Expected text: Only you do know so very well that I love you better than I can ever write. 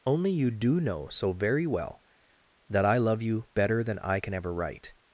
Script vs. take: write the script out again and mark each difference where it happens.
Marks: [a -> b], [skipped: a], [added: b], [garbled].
Only you do know so very well that I love you better than I can ever write.